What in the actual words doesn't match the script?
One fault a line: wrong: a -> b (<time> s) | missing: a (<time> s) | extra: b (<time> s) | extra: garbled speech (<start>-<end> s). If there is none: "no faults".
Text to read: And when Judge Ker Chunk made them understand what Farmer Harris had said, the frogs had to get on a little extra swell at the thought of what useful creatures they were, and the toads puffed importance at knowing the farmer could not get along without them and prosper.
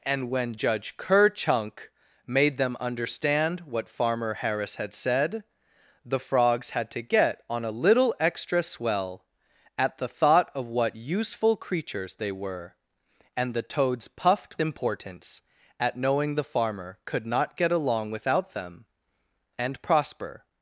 no faults